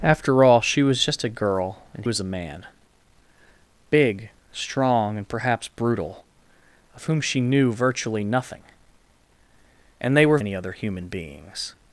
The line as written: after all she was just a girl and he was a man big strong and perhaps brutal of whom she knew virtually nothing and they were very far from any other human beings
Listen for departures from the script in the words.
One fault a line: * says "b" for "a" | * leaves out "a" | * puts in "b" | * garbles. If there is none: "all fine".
* leaves out "he"
* leaves out "very far from"